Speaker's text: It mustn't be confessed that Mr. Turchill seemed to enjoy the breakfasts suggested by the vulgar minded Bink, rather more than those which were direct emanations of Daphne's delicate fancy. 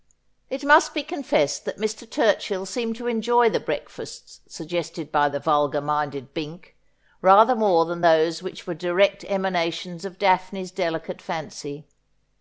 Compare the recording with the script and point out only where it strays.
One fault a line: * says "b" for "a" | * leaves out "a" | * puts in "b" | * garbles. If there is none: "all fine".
* says "must" for "mustn't"